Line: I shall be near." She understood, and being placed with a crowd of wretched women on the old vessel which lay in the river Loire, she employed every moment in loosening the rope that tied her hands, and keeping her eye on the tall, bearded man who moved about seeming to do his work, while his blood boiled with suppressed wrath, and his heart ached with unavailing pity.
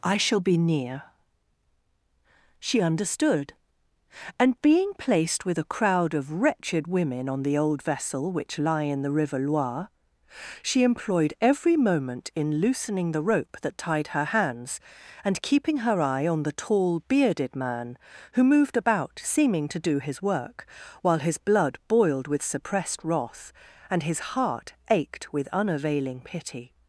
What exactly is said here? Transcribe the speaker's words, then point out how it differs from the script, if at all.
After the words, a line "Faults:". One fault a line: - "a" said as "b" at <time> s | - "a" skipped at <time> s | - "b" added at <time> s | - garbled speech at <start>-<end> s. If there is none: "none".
I shall be near." She understood, and being placed with a crowd of wretched women on the old vessel which lie in the river Loire, she employed every moment in loosening the rope that tied her hands, and keeping her eye on the tall, bearded man who moved about seeming to do his work, while his blood boiled with suppressed wrath, and his heart ached with unavailing pity.
Faults:
- "lay" said as "lie" at 8.6 s